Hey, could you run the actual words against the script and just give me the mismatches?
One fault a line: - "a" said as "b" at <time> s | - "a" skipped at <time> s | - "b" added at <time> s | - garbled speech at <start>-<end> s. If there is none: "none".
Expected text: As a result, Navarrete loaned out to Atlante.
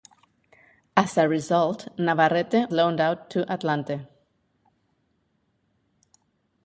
none